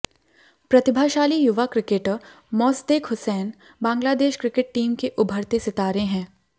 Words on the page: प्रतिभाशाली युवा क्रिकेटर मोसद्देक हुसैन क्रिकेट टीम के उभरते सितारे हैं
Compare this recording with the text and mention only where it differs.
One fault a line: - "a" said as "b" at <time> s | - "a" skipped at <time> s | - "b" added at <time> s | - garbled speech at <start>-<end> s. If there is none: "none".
- "बांग्लादेश" added at 3.8 s